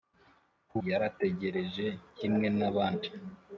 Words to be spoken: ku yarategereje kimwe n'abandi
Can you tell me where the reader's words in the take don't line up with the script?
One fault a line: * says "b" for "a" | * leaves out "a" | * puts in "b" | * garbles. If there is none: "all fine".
all fine